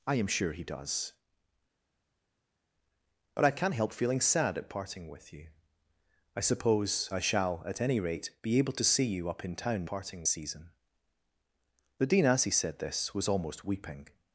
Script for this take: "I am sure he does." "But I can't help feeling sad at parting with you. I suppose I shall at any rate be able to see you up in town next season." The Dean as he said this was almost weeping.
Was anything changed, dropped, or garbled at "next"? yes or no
yes